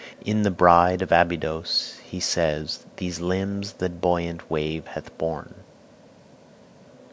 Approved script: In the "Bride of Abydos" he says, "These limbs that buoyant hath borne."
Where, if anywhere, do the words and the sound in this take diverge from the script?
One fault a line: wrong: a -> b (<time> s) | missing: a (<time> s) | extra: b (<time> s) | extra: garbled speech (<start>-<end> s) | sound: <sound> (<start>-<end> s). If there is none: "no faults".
extra: wave (4.5 s)